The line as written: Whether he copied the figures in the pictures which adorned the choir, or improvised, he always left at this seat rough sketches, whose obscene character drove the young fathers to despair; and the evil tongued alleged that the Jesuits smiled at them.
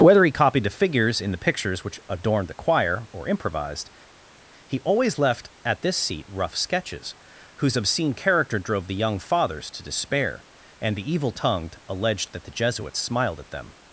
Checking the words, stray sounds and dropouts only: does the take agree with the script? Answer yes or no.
yes